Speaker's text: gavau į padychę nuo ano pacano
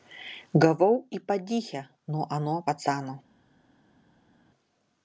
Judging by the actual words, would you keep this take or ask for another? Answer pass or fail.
pass